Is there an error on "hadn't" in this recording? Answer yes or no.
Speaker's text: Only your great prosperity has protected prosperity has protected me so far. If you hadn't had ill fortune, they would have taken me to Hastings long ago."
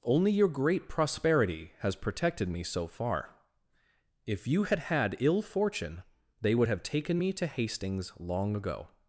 yes